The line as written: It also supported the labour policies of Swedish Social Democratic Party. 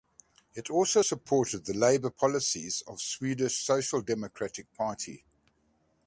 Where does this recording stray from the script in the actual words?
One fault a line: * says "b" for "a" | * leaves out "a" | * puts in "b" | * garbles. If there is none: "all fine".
all fine